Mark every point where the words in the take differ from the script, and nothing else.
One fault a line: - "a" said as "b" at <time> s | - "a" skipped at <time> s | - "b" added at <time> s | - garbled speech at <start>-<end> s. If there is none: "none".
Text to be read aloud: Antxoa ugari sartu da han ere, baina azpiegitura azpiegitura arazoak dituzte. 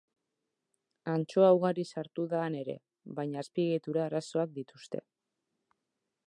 - "azpiegitura" skipped at 4.1 s